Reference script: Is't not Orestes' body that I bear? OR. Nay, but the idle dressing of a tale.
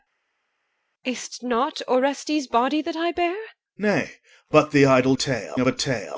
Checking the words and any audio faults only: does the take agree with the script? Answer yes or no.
no